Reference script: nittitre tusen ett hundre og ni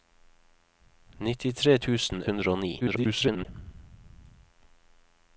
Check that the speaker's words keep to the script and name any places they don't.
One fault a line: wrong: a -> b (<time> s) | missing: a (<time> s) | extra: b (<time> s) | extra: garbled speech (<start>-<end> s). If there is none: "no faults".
missing: ett (2.2 s)
extra: garbled speech (2.8-3.5 s)